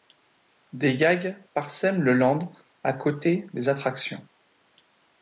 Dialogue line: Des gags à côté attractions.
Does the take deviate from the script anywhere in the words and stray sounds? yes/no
yes